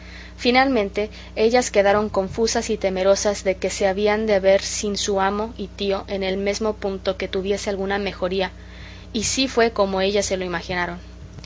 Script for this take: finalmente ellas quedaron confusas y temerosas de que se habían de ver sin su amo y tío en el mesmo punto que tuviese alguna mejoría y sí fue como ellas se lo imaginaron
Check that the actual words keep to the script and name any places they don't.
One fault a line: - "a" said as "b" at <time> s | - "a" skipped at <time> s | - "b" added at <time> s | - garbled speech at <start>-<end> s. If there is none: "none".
none